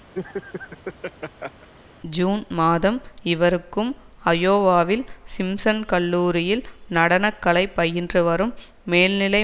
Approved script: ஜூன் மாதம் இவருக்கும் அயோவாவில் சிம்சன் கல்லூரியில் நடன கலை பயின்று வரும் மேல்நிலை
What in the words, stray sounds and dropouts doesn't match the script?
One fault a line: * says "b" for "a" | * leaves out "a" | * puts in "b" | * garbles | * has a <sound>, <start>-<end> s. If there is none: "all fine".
* has a laugh, 0.1-1.7 s